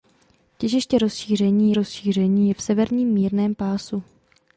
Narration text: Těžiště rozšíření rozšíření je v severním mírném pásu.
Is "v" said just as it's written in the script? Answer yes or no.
yes